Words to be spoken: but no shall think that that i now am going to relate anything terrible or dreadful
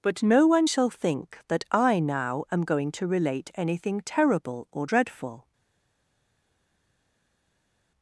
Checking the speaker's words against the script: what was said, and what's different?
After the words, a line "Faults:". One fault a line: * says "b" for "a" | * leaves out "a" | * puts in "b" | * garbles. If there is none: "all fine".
but no one shall think that i now am going to relate anything terrible or dreadful
Faults:
* puts in "one"
* leaves out "that"